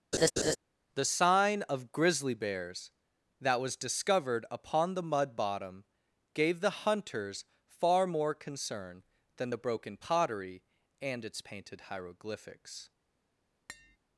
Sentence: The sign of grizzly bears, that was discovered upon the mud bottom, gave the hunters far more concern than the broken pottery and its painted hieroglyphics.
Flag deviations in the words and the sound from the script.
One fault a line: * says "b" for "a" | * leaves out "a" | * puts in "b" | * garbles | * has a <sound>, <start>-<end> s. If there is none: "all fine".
* has a laugh, 0.1-0.6 s
* has a tap, 13.7-14.0 s